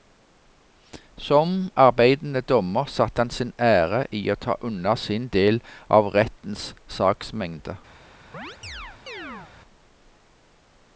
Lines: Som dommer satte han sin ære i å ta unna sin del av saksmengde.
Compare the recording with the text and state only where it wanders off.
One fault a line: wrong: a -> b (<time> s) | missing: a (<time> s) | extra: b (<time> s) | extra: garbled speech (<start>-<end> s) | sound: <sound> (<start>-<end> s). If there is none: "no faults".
extra: arbeidende (1.8 s)
extra: rettens (6.2 s)
sound: chirp (8.3-9.5 s)